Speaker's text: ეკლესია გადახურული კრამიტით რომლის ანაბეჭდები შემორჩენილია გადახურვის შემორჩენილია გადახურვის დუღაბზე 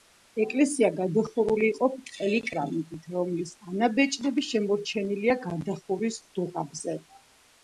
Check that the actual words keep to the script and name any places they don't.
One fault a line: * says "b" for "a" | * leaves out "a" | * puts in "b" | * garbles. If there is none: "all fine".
* puts in "იყო ბრტყელი"
* leaves out "შემორჩენილია გადახურვის"